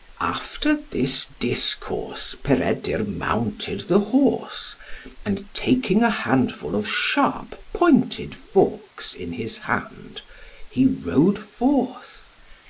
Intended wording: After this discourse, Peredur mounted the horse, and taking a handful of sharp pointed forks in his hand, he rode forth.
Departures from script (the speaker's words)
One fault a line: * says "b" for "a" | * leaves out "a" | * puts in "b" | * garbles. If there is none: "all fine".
all fine